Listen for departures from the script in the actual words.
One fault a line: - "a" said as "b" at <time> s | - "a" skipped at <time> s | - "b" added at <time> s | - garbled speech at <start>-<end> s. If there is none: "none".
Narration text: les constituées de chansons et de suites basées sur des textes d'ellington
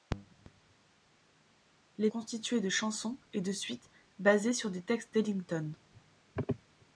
none